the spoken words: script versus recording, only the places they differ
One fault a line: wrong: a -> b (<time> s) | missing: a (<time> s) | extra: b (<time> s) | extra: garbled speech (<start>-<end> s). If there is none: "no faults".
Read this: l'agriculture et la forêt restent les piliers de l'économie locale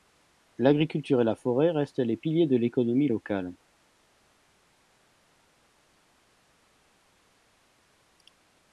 no faults